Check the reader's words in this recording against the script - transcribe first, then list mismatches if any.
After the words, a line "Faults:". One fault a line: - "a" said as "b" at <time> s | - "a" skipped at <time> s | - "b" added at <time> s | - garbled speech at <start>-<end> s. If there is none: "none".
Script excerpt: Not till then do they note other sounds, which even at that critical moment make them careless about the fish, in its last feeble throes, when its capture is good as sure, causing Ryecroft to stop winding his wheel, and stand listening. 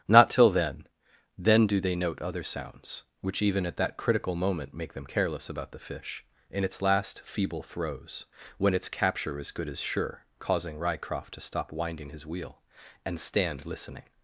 Not till then then do they note other sounds, which even at that critical moment make them careless about the fish, in its last feeble throes, when its capture is good as sure, causing Ryecroft to stop winding his wheel, and stand listening.
Faults:
- "then" added at 1.4 s